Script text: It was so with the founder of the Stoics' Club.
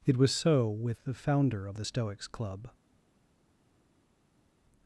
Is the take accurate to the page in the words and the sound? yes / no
yes